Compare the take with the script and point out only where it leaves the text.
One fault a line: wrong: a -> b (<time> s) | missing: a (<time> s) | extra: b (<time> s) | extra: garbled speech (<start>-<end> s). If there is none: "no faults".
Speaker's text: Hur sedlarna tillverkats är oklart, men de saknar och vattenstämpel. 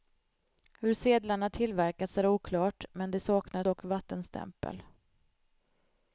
no faults